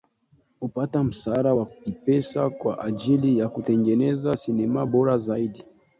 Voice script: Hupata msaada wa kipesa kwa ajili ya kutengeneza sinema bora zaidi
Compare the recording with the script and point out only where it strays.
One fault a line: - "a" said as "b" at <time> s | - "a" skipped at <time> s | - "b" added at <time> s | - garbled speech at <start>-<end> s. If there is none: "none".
none